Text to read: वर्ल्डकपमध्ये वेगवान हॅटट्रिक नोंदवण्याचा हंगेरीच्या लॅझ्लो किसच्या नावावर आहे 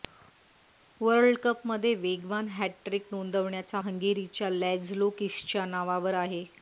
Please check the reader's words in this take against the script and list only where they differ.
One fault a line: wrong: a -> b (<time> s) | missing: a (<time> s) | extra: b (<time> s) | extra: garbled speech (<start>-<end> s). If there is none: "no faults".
no faults